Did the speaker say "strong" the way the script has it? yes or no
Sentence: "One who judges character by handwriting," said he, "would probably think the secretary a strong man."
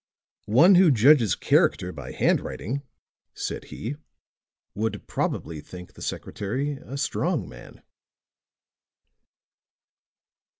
yes